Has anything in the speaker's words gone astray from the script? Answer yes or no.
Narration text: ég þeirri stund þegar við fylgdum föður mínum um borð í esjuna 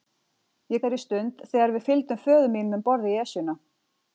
no